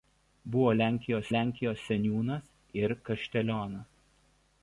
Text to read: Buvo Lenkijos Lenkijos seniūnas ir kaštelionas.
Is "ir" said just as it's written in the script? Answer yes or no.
yes